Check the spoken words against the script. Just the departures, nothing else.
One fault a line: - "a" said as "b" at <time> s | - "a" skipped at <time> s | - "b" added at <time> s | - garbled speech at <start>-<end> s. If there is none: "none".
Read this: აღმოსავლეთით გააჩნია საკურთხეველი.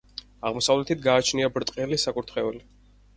- "ბრტყელი" added at 1.6 s